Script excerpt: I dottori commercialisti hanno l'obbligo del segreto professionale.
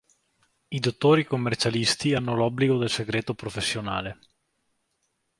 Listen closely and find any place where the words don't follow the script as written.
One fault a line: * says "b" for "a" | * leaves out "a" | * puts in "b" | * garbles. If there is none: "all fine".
all fine